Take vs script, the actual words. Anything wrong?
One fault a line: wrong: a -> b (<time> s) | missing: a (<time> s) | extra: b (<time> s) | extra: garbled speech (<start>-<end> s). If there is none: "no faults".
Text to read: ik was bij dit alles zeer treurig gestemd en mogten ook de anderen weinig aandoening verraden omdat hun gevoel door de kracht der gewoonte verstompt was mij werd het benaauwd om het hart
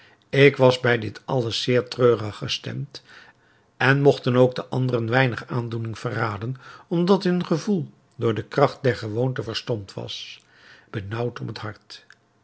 missing: mij werd het (10.4 s)